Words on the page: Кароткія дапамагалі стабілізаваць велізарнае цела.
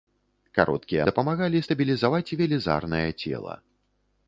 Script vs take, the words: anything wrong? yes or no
no